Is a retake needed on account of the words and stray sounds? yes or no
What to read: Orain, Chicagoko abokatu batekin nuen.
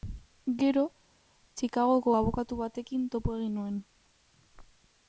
yes